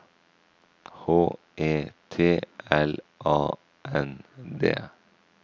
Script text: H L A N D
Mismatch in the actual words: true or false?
true